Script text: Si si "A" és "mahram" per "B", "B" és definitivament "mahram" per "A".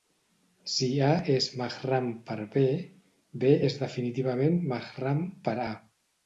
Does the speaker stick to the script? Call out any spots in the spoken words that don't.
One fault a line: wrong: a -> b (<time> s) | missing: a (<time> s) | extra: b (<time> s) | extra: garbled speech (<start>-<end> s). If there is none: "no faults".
missing: si (0.9 s)